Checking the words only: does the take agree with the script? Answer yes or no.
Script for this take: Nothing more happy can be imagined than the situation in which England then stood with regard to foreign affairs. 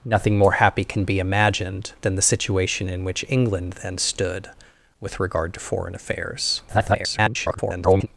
no